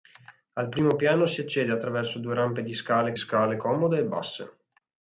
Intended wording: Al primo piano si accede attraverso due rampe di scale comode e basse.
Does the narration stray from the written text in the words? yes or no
yes